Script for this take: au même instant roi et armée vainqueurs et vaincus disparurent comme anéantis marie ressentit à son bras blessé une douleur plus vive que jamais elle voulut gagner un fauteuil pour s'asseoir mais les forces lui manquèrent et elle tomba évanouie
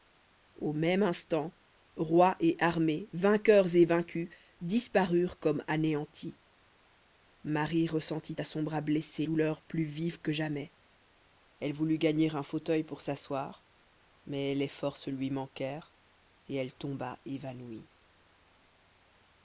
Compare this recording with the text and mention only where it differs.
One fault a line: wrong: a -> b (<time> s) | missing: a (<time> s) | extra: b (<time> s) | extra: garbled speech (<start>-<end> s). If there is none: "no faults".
missing: une (9.2 s)